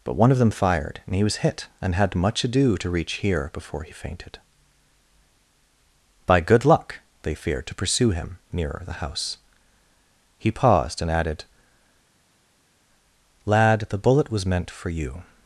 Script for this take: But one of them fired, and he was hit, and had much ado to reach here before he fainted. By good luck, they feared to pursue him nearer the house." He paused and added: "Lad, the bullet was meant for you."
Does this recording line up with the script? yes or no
yes